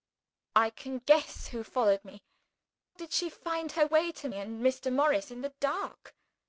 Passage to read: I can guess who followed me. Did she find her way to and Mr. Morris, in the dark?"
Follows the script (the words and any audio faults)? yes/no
yes